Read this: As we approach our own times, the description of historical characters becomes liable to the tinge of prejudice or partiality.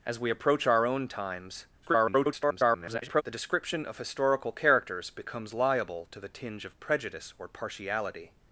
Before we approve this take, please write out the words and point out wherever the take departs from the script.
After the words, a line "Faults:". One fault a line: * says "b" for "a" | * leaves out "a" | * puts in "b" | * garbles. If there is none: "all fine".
As we approach our own times, [garbled] the description of historical characters becomes liable to the tinge of prejudice or partiality.
Faults:
* garbles